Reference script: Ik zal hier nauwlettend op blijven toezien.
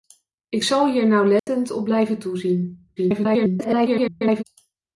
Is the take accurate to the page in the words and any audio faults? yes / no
no